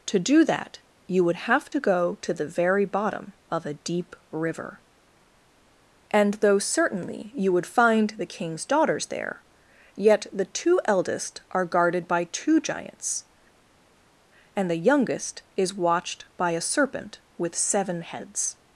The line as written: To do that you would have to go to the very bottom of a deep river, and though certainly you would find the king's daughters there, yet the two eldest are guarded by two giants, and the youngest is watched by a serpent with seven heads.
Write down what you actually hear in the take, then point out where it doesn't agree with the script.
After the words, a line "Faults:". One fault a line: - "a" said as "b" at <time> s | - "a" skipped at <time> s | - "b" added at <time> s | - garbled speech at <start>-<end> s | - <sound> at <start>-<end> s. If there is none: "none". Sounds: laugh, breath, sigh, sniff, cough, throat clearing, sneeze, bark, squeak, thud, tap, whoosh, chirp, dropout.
To do that you would have to go to the very bottom of a deep river, and though certainly you would find the king's daughters there, yet the two eldest are guarded by two giants, and the youngest is watched by a serpent with seven heads.
Faults:
none